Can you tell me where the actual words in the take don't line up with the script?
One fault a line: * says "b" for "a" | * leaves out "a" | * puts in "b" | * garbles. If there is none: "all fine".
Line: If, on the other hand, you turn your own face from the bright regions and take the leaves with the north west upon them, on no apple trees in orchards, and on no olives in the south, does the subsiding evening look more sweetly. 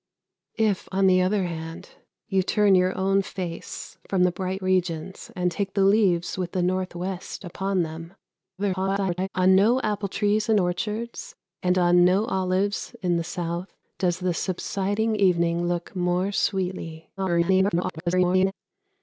* garbles
* garbles